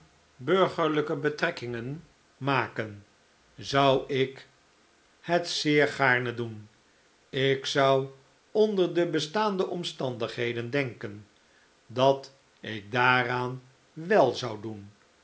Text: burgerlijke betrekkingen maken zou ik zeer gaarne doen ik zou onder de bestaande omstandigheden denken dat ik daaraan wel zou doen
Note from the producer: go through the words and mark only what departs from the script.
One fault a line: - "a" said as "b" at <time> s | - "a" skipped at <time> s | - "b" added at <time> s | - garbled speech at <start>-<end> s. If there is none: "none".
- "het" added at 5.2 s